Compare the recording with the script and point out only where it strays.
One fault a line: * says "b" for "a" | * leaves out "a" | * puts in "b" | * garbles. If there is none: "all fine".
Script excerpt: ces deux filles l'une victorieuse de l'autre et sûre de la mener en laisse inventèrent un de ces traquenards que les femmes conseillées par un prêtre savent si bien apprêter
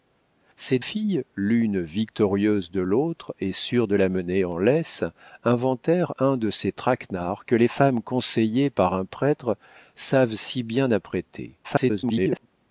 * leaves out "deux"
* garbles